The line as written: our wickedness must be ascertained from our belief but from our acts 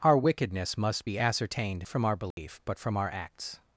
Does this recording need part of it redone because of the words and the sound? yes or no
yes